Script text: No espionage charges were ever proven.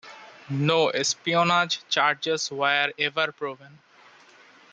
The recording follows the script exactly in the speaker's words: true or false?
true